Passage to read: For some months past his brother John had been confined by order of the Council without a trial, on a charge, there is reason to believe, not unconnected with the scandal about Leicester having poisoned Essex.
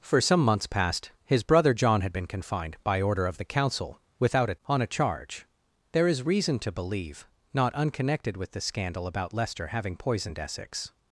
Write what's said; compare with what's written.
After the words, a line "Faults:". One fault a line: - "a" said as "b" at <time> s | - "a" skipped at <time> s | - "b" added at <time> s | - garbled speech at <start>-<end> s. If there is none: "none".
For some months past his brother John had been confined by order of the Council without a on a charge, there is reason to believe, not unconnected with the scandal about Leicester having poisoned Essex.
Faults:
- "trial" skipped at 4.6 s